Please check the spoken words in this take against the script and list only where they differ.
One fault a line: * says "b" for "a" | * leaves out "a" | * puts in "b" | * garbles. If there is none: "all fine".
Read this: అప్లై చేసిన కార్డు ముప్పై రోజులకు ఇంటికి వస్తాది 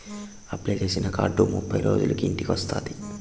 all fine